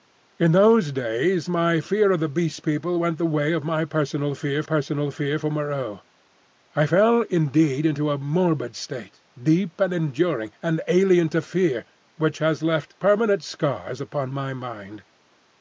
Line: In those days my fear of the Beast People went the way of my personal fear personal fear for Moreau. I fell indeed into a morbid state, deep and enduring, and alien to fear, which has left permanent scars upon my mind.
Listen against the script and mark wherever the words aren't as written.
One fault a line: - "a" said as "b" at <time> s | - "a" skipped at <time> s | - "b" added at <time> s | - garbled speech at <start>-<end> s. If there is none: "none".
none